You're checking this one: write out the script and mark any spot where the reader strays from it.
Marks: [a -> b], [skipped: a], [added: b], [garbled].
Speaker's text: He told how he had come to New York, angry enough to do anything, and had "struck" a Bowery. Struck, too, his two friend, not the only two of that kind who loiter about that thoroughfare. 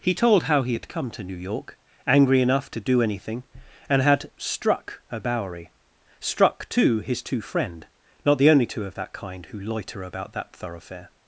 He told how he had come to New York, angry enough to do anything, and had "struck" a Bowery. Struck, too, his two friend, not the only two of that kind who loiter about that thoroughfare.